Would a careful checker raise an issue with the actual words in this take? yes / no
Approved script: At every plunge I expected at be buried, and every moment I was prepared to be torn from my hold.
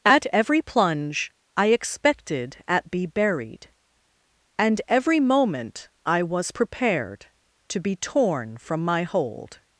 no